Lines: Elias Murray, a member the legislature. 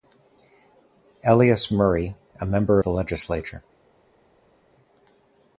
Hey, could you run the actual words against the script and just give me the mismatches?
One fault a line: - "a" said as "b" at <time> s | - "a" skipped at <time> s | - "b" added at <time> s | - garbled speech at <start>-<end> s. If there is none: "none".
none